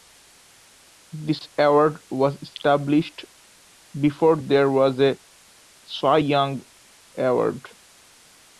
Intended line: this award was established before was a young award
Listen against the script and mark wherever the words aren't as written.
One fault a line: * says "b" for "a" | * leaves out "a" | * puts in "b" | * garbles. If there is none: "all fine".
* puts in "there"
* puts in "cy"